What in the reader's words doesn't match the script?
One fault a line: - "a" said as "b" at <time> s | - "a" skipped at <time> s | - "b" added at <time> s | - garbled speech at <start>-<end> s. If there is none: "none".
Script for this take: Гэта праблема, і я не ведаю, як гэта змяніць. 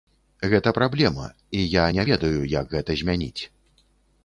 none